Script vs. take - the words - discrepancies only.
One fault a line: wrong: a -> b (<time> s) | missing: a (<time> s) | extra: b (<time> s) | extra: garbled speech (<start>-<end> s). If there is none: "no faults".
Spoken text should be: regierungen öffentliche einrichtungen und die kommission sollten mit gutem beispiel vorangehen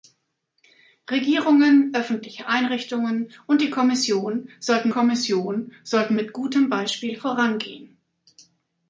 extra: kommission sollten (4.9 s)